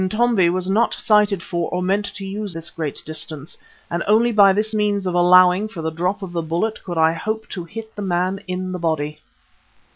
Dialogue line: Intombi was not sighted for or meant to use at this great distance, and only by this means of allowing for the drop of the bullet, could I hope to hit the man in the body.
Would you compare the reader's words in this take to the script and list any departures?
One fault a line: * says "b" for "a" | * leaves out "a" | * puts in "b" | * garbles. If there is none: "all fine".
* leaves out "at"